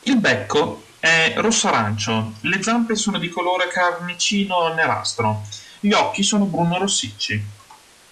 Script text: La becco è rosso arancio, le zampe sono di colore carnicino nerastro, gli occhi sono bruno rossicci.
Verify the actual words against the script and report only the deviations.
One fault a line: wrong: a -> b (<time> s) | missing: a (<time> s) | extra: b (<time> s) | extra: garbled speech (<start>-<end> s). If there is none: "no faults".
wrong: La -> Il (0.0 s)